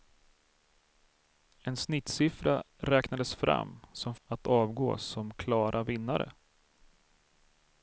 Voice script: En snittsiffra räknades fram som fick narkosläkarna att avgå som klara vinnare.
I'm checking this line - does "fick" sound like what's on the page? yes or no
no